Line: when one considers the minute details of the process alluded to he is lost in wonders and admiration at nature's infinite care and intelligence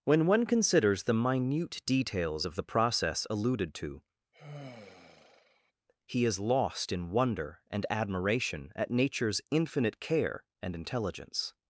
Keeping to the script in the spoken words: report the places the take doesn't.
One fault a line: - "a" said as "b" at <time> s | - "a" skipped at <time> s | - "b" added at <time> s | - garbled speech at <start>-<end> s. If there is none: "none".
- "wonders" said as "wonder" at 7.1 s